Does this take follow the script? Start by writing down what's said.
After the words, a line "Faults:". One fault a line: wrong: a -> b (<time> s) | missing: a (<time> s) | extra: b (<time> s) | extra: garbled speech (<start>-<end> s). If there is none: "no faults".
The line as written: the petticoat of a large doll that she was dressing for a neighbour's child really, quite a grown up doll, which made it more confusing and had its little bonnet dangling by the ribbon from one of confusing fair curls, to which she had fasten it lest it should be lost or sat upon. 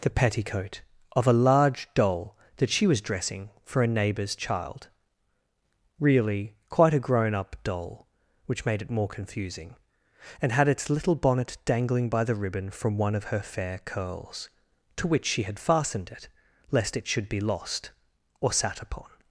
the petticoat of a large doll that she was dressing for a neighbour's child really, quite a grown up doll, which made it more confusing and had its little bonnet dangling by the ribbon from one of her fair curls, to which she had fastened it lest it should be lost or sat upon.
Faults:
wrong: confusing -> her (13.2 s)
wrong: fasten -> fastened (15.6 s)